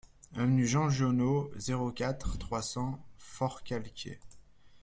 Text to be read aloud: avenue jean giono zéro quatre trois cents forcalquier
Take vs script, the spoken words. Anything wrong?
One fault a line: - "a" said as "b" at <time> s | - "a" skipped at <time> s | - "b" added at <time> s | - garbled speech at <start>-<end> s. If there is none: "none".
none